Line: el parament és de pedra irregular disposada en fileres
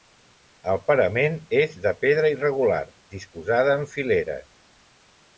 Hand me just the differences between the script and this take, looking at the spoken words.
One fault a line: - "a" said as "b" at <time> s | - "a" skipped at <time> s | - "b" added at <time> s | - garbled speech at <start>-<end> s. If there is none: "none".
none